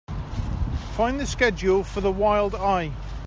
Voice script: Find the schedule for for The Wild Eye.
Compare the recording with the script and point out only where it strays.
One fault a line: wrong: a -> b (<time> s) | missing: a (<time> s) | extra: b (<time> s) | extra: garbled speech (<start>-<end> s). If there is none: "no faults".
missing: for (2.0 s)